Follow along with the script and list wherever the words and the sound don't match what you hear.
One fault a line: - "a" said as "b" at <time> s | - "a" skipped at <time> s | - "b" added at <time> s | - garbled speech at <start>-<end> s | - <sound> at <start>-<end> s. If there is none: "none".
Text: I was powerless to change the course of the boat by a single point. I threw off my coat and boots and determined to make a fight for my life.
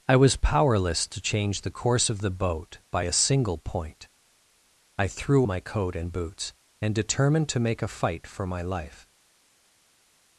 - "off" skipped at 5.5 s